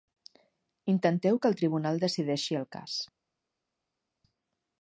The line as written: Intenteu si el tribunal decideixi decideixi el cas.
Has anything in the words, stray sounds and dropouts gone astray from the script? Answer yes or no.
yes